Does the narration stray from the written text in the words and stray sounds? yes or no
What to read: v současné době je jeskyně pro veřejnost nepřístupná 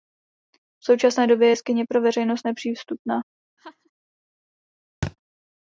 yes